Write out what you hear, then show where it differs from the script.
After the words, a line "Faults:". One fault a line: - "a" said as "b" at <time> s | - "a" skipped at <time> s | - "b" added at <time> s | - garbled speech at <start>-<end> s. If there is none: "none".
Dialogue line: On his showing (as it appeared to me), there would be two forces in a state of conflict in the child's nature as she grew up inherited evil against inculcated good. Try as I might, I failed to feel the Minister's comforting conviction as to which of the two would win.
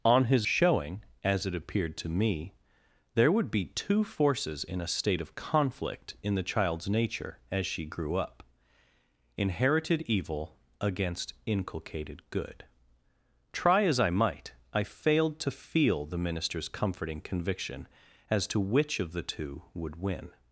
On his showing (as it appeared to me), there would be two forces in a state of conflict in the child's nature as she grew up inherited evil against inculcated good. Try as I might, I failed to feel the Minister's comforting conviction as to which of the two would win.
Faults:
none